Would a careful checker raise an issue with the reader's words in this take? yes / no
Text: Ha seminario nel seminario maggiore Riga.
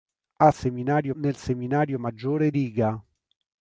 no